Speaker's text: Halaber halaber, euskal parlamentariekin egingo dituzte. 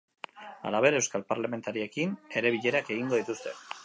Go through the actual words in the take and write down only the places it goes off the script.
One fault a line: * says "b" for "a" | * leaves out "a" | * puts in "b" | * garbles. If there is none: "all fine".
* leaves out "halaber"
* puts in "ere bilerak"